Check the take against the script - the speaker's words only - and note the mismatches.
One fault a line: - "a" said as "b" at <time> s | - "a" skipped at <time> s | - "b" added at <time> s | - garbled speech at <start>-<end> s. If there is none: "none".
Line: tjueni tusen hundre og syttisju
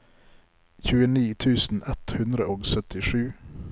- "ett" added at 1.9 s